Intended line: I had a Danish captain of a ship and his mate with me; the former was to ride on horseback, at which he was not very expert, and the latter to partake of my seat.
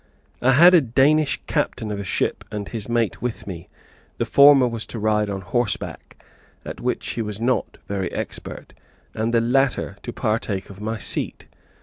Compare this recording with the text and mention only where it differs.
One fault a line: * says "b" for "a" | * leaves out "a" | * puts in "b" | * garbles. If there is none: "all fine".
all fine